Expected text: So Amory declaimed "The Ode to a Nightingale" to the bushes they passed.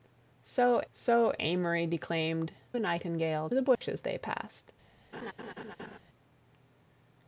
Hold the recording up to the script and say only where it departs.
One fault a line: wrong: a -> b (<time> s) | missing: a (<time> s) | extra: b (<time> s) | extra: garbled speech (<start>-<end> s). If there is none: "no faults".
extra: so (0.9 s)
missing: The Ode to (2.5 s)
missing: to (3.5 s)